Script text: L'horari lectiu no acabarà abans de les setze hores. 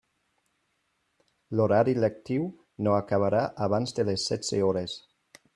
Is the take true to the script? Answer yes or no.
yes